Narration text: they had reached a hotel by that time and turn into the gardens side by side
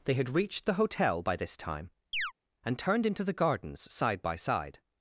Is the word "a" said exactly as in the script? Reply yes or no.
no